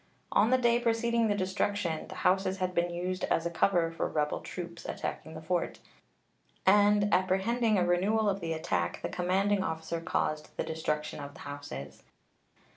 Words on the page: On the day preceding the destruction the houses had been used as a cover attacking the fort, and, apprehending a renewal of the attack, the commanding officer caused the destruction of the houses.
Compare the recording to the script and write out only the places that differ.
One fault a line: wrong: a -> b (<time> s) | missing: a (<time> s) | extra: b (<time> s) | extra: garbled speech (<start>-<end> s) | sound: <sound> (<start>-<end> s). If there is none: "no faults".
extra: for rebel troops (3.9 s)